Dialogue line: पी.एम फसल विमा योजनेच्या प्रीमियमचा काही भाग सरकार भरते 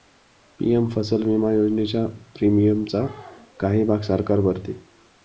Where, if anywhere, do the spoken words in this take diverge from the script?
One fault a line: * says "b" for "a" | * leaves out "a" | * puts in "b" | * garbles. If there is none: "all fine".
all fine